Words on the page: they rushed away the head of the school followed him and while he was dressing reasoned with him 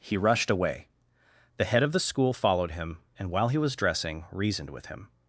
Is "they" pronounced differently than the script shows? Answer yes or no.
yes